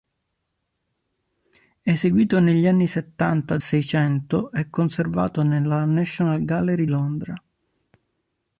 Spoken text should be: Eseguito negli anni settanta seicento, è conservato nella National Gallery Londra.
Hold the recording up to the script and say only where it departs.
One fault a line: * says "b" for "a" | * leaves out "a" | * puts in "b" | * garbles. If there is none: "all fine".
all fine